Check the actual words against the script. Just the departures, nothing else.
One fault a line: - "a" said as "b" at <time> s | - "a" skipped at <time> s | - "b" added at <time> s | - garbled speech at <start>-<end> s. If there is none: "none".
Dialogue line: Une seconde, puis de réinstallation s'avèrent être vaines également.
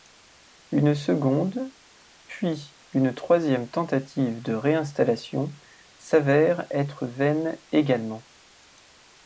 - "une troisième tentative" added at 2.9 s